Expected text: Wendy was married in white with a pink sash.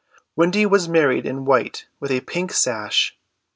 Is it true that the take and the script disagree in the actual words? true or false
false